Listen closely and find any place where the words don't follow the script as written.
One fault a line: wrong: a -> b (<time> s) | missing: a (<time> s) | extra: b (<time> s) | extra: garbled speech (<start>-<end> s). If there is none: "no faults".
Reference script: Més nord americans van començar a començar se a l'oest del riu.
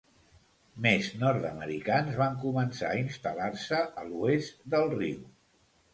wrong: començar -> instal·lar (3.0 s)